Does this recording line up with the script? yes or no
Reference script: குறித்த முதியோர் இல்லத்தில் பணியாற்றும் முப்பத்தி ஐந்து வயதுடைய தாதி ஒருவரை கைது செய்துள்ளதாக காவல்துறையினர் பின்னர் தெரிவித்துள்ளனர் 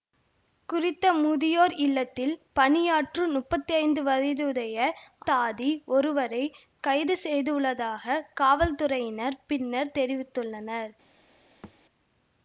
yes